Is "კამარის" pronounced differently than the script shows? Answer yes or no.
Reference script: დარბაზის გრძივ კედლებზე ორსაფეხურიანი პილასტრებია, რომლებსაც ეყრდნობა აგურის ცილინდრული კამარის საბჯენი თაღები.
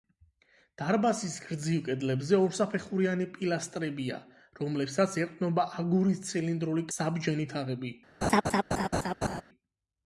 yes